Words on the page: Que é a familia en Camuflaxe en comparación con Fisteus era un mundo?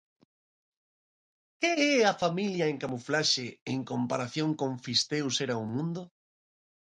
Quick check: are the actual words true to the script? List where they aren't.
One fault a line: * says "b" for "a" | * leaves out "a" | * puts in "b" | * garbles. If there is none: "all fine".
all fine